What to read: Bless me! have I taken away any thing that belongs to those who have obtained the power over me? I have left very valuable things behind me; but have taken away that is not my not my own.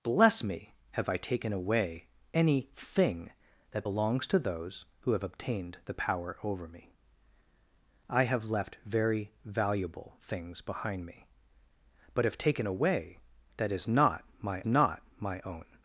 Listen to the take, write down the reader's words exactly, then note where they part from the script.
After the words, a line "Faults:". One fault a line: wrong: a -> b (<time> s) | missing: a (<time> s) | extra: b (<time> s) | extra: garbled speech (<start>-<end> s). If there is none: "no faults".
Bless me! have I taken away any thing that belongs to those who have obtained the power over me? I have left very valuable things behind me; but have taken away that is not my not my own.
Faults:
no faults